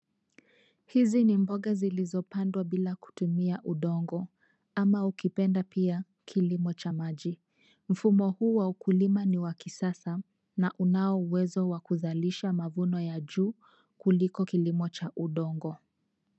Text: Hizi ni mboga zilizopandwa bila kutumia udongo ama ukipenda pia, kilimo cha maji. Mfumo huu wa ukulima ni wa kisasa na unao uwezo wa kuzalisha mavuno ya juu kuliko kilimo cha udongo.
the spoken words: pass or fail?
pass